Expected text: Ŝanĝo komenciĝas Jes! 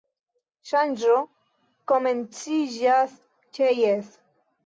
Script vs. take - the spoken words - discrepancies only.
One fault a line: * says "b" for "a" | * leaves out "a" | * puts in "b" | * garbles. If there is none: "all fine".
* puts in "ĉe"